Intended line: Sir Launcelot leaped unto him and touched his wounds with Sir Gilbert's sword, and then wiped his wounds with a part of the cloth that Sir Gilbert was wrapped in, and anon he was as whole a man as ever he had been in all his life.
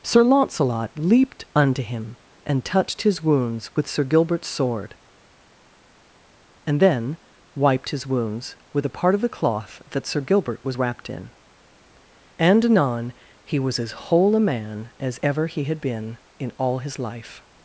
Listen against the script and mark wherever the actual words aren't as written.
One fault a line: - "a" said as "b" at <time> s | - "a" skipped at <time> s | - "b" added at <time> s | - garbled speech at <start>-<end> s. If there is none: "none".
none